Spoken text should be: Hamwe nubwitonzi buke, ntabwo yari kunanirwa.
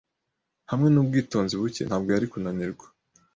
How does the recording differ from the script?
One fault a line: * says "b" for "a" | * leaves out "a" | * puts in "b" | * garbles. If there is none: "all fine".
all fine